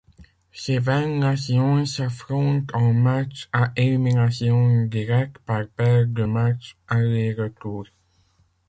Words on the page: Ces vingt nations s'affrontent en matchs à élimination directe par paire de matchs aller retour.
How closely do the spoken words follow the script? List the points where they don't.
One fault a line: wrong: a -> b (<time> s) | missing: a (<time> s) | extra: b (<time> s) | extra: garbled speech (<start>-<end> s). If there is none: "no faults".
no faults